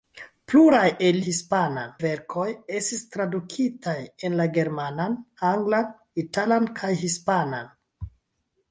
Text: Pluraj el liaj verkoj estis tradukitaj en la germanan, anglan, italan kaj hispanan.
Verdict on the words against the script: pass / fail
fail